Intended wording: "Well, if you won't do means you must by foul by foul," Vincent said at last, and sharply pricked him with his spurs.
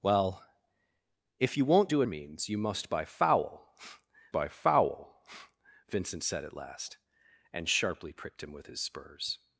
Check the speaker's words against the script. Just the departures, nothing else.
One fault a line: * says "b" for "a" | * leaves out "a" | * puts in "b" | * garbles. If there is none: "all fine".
all fine